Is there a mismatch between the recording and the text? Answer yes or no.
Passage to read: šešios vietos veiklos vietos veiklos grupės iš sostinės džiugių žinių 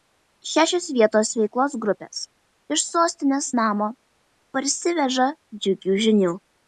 yes